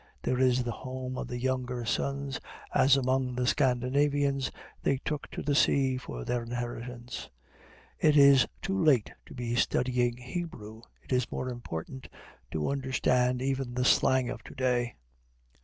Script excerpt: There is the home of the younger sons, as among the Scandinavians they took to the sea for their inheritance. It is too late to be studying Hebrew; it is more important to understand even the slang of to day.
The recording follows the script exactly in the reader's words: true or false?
true